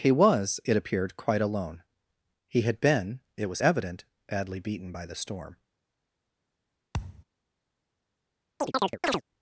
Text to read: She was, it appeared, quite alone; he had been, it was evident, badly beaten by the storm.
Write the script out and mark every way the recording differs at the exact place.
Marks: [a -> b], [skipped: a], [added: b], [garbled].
[She -> He] was, it appeared, quite alone; he had been, it was evident, badly beaten by the storm.